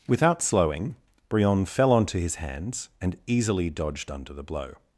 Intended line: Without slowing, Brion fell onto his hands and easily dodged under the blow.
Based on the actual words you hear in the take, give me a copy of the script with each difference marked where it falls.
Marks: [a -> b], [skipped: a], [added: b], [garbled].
Without slowing, Brion fell onto his hands and easily dodged under the blow.